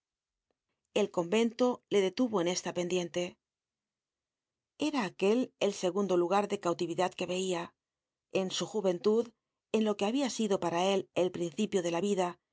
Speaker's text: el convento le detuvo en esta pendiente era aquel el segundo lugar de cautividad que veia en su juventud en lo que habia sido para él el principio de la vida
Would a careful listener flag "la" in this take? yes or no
no